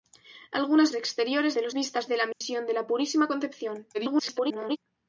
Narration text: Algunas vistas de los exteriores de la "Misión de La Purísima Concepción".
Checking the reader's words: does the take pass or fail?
fail